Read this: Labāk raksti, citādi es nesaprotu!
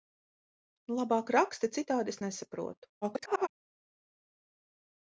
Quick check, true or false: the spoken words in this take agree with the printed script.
false